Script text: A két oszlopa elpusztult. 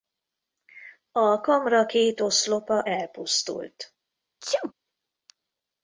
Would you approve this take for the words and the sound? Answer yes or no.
no